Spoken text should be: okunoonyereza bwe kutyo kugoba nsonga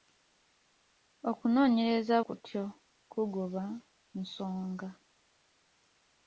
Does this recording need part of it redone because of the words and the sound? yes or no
yes